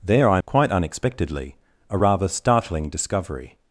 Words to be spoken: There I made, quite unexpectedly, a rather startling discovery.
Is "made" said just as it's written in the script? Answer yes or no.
no